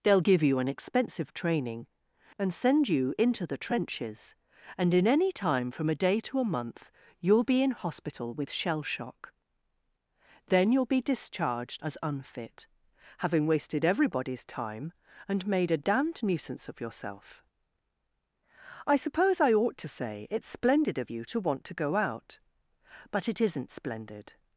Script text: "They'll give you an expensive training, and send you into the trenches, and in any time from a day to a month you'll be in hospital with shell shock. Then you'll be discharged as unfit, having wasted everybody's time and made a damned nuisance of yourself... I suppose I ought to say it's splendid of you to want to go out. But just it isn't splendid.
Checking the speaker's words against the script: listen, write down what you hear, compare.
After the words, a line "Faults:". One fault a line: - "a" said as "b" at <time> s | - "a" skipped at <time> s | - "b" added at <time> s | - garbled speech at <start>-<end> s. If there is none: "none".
"They'll give you an expensive training, and send you into the trenches, and in any time from a day to a month you'll be in hospital with shell shock. Then you'll be discharged as unfit, having wasted everybody's time and made a damned nuisance of yourself... I suppose I ought to say it's splendid of you to want to go out. But it isn't splendid.
Faults:
- "just" skipped at 23.3 s